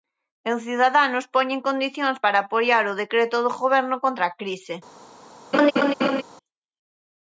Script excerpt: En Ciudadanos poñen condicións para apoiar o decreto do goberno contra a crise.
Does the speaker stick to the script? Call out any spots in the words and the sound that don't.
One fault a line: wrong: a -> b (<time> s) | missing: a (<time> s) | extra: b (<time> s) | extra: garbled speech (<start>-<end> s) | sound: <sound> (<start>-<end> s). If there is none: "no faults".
sound: laugh (5.5-6.2 s)